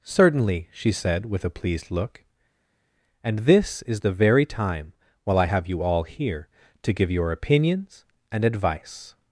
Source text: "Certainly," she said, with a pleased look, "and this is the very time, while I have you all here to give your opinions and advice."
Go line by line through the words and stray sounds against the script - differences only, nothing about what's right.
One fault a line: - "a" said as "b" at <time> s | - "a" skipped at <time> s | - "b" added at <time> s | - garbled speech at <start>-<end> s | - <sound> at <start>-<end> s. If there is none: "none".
none